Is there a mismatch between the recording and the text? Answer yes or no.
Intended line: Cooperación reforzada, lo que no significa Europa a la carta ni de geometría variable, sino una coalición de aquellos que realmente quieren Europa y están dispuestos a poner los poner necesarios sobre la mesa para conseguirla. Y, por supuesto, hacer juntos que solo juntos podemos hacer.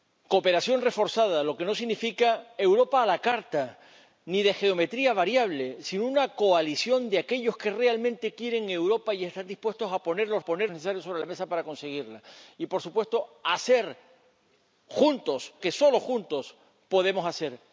no